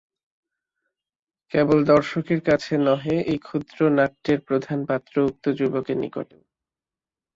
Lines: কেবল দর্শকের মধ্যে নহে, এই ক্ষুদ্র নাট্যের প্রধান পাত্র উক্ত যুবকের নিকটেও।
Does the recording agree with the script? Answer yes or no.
no